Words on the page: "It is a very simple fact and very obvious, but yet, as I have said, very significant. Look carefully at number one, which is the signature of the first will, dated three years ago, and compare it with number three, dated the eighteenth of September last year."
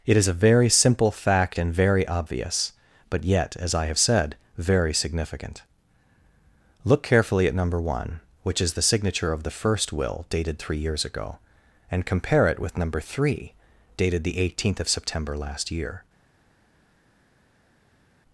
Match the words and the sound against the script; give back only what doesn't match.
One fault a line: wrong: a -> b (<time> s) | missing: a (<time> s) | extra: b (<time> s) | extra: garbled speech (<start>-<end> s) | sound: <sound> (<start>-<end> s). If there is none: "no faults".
no faults